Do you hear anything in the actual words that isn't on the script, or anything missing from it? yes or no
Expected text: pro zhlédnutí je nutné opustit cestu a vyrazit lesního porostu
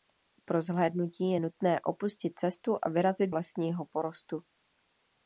no